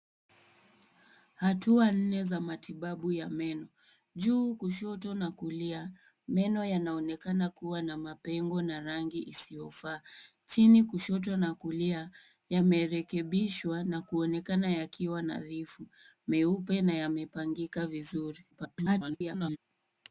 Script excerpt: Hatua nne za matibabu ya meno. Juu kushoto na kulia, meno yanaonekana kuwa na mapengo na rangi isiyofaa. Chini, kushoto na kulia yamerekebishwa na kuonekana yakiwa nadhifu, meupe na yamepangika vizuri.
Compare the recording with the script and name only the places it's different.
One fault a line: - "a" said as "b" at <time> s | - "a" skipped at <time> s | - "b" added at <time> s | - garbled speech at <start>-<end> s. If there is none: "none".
- garbled speech at 18.5-19.6 s